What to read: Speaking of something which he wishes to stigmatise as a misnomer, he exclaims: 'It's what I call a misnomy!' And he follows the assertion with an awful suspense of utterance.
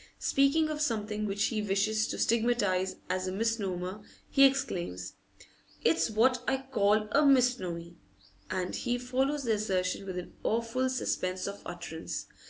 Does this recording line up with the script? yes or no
yes